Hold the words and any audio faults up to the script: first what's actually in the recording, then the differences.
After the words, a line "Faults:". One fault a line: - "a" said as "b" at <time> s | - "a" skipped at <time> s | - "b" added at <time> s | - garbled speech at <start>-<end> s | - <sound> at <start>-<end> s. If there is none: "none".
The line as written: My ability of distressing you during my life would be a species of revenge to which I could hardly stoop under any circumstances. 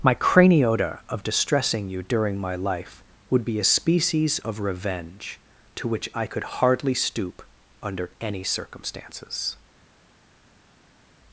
My craniota of distressing you during my life would be a species of revenge to which I could hardly stoop under any circumstances.
Faults:
- "ability" said as "craniota" at 0.1 s